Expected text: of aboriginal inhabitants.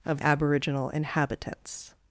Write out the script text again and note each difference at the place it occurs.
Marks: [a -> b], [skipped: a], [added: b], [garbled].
of aboriginal inhabitants.